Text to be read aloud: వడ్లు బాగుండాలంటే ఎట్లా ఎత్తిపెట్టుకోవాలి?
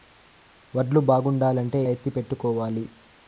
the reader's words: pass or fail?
fail